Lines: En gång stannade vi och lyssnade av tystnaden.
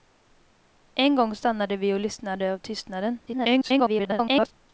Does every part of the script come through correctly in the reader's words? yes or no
no